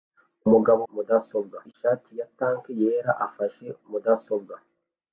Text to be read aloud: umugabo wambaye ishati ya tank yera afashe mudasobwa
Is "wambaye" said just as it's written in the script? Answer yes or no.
no